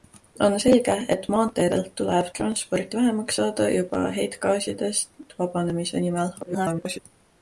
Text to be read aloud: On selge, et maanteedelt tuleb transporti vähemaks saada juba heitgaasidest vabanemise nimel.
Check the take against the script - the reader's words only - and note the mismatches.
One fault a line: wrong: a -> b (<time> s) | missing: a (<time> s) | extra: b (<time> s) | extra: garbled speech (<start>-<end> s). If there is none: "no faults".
extra: garbled speech (6.4-7.0 s)